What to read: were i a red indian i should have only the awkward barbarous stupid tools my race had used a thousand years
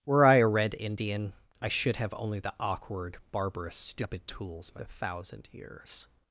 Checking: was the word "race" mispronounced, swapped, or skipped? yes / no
yes